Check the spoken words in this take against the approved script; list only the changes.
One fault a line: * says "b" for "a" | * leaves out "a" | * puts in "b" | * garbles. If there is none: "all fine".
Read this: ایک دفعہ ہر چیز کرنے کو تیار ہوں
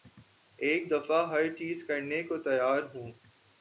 all fine